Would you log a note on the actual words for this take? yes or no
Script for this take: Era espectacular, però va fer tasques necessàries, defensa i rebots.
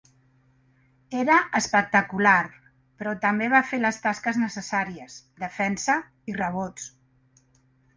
yes